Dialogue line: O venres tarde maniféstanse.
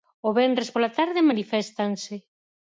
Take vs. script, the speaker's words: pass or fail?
fail